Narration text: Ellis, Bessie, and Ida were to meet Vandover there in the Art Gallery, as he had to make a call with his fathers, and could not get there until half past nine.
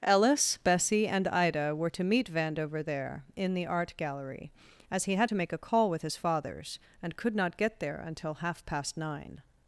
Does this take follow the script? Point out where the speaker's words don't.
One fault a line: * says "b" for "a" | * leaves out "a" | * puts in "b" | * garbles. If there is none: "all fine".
all fine